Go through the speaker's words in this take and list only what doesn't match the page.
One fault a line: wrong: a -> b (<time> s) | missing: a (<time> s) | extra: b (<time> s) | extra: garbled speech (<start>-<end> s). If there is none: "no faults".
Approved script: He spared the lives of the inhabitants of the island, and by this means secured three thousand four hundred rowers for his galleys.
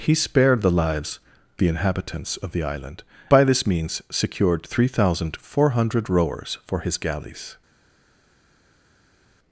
missing: of (1.2 s)
missing: and (3.0 s)